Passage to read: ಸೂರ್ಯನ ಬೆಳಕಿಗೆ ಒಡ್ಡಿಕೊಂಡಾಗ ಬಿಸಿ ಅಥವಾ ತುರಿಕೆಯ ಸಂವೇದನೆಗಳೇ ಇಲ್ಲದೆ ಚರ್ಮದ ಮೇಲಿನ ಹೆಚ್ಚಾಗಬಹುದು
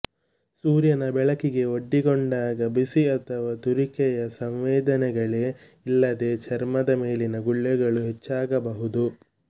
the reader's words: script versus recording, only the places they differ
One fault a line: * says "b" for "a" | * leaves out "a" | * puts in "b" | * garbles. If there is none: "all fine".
* puts in "ಗುಳ್ಳೆಗಳು"